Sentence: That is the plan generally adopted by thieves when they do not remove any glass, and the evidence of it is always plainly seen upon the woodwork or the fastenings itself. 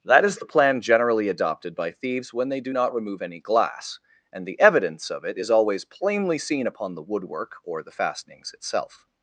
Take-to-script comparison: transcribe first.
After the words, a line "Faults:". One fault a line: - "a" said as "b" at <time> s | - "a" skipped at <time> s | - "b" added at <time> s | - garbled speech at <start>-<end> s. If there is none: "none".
That is the plan generally adopted by thieves when they do not remove any glass, and the evidence of it is always plainly seen upon the woodwork or the fastenings itself.
Faults:
none